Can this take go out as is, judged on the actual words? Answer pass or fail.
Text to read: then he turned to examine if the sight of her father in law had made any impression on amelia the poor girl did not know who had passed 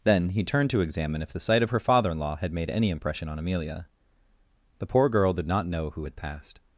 pass